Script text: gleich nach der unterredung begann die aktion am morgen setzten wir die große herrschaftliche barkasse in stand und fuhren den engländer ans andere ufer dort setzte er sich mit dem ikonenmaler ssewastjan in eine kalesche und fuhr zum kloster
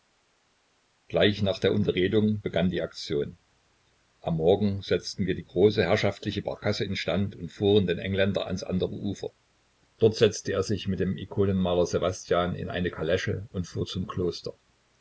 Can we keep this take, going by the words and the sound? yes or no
yes